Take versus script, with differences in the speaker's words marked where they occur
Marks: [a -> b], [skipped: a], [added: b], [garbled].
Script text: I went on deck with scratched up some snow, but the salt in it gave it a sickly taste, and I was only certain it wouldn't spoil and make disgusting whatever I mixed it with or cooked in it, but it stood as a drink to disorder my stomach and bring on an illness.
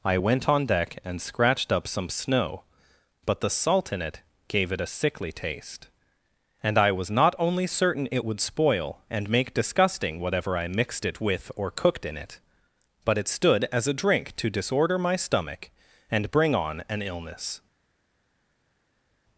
I went on deck [with -> and] scratched up some snow, but the salt in it gave it a sickly taste, and I was [added: not] only certain it [wouldn't -> would] spoil and make disgusting whatever I mixed it with or cooked in it, but it stood as a drink to disorder my stomach and bring on an illness.